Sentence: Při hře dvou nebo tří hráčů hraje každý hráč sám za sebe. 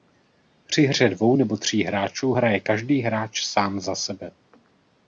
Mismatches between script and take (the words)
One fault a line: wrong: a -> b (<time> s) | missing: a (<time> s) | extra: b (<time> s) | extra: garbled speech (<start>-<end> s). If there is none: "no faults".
no faults